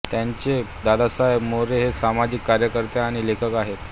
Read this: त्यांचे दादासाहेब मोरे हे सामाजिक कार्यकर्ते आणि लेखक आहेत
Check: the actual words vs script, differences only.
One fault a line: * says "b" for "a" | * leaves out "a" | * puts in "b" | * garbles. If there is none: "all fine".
all fine